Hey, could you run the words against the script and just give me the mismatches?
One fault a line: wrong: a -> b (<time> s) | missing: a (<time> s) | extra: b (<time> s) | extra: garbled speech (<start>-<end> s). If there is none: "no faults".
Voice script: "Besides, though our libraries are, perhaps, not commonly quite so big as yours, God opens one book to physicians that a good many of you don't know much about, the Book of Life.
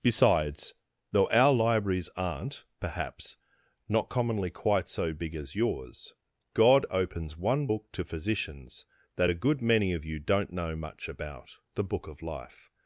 wrong: are -> aren't (2.1 s)